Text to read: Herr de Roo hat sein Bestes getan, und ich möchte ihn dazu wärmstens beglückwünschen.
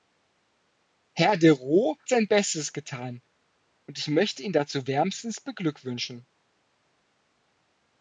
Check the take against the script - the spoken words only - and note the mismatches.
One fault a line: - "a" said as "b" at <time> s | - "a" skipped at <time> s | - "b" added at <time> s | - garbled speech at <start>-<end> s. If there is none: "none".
- "hat" skipped at 1.9 s